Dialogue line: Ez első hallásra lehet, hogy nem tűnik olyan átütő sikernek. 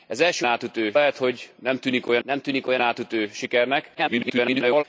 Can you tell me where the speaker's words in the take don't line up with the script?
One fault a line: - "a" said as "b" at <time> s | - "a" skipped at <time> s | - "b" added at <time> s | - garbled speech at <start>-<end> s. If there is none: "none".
- "hallásra" said as "átütő" at 0.5 s
- "nem tűnik olyan" added at 2.2 s
- garbled speech at 3.9-4.8 s